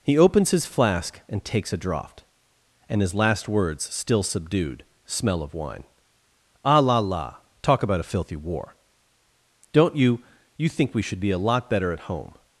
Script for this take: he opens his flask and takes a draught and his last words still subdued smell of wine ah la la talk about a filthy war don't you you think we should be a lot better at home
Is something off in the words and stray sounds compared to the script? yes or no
no